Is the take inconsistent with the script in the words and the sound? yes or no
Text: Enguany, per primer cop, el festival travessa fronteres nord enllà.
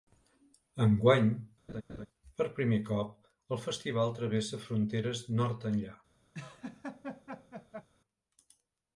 yes